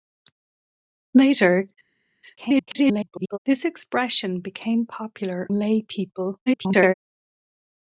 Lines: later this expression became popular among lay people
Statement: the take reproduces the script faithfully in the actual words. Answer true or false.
false